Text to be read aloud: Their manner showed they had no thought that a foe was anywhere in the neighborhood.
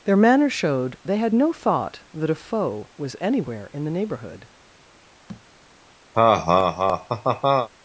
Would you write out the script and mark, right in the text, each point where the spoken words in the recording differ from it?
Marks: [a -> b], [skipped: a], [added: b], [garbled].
Their manner showed they had no thought that a foe was anywhere in the neighborhood.